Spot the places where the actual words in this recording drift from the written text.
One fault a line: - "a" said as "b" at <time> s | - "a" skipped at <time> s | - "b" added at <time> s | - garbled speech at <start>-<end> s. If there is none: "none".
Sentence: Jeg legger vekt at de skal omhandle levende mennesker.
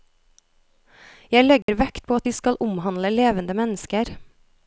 - "på" added at 2.1 s